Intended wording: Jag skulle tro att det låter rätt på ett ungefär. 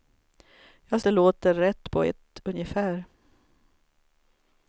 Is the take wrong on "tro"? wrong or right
wrong